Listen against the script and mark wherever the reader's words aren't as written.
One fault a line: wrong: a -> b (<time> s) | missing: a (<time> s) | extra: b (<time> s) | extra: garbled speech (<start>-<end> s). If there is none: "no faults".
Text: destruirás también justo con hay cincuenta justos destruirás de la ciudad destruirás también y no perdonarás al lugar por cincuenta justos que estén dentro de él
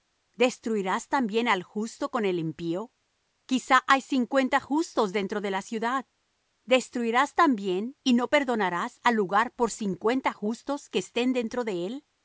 extra: al (1.5 s)
extra: el impío quizá (2.2 s)
wrong: destruirás -> dentro (5.1 s)